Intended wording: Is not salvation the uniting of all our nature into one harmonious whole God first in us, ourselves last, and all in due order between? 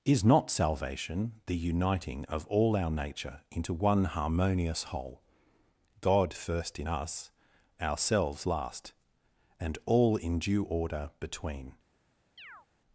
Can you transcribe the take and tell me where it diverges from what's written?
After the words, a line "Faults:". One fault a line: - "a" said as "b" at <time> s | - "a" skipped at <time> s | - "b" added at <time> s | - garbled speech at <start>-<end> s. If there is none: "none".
Is not salvation the uniting of all our nature into one harmonious whole God first in us, ourselves last, and all in due order between?
Faults:
none